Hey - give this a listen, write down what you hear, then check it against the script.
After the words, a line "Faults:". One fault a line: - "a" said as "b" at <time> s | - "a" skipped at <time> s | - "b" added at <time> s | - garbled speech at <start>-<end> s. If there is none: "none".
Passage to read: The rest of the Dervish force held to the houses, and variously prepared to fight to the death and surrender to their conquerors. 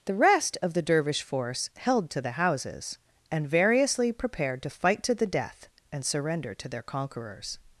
The rest of the Dervish force held to the houses, and variously prepared to fight to the death and surrender to their conquerors.
Faults:
none